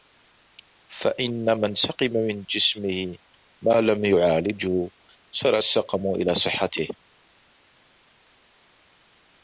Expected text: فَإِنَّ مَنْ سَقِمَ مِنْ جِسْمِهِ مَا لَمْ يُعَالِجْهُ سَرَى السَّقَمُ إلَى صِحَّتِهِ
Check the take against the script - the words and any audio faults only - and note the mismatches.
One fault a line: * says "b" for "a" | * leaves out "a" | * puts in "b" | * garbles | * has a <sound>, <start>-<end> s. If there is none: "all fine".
all fine